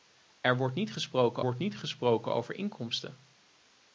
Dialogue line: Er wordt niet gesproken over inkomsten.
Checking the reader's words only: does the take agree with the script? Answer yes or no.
no